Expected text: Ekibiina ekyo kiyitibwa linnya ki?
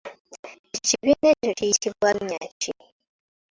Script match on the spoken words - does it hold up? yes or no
yes